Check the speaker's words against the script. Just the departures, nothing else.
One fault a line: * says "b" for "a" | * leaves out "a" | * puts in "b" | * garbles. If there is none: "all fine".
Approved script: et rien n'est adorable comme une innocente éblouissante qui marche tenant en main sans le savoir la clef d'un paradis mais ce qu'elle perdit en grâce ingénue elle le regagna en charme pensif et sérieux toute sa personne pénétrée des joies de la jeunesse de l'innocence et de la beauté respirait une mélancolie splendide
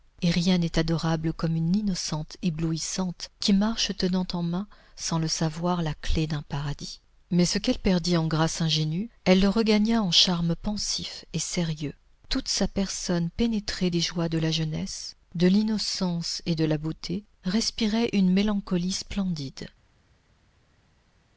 all fine